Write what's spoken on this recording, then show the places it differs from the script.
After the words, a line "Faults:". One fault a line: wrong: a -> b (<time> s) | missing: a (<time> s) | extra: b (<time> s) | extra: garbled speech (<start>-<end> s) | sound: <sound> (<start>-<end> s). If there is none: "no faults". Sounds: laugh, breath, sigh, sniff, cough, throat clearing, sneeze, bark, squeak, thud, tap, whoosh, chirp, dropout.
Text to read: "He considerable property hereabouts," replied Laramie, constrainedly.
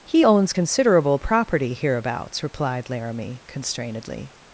"He owns considerable property hereabouts," replied Laramie, constrainedly.
Faults:
extra: owns (0.2 s)